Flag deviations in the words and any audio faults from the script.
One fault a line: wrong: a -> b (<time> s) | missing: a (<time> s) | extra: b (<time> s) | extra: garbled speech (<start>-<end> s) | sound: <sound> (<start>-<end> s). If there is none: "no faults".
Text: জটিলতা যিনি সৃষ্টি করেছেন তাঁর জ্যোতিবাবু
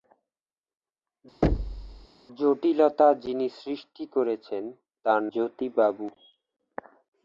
sound: thud (1.4-2.1 s)